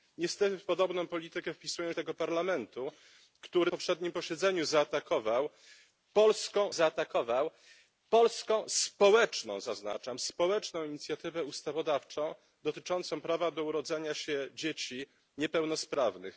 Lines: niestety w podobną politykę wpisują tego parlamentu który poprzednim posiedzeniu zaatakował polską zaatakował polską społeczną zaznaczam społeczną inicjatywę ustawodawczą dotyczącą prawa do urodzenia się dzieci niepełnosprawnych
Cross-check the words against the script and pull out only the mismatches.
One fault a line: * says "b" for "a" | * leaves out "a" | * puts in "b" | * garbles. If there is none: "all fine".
all fine